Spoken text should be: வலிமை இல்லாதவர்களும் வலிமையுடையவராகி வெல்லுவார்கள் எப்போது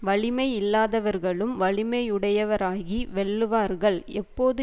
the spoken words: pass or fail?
pass